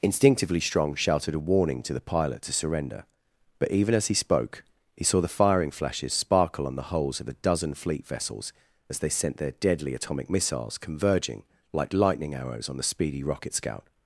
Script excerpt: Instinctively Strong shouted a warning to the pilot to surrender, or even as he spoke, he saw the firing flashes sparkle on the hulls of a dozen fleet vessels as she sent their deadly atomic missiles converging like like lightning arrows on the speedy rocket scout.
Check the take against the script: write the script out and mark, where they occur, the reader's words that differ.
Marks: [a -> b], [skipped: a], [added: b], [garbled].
Instinctively Strong shouted a warning to the pilot to surrender, [or -> but] even as he spoke, he saw the firing flashes sparkle on the hulls of a dozen fleet vessels as [she -> they] sent their deadly atomic missiles converging like [skipped: like] lightning arrows on the speedy rocket scout.